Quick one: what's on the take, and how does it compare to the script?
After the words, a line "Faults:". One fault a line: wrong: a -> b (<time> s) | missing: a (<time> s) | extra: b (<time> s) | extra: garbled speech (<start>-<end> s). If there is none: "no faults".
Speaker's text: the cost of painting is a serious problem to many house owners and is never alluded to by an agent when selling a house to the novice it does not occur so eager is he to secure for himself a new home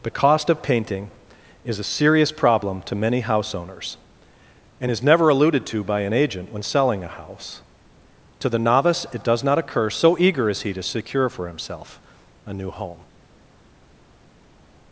the cost of painting is a serious problem to many house owners and is never alluded to by an agent when selling a house to the novice it does not occur so eager is he to secure for himself a new home
Faults:
no faults